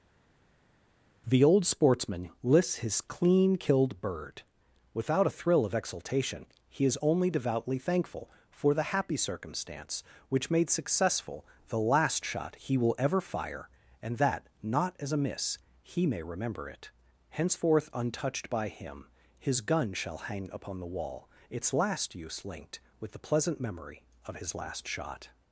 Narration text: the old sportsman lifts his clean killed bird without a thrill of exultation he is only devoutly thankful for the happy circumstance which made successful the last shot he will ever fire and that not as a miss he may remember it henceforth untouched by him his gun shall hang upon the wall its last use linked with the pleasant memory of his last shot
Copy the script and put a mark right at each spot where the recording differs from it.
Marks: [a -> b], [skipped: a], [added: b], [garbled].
the old sportsman [lifts -> lists] his clean killed bird without a thrill of exultation he is only devoutly thankful for the happy circumstance which made successful the last shot he will ever fire and that not as a miss he may remember it henceforth untouched by him his gun shall hang upon the wall its last use linked with the pleasant memory of his last shot